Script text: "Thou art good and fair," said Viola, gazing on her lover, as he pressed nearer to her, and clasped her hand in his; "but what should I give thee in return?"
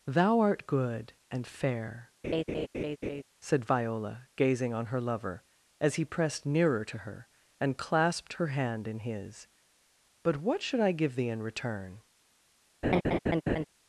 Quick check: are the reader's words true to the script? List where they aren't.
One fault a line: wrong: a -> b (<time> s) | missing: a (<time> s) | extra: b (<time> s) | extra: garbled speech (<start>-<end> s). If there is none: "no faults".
no faults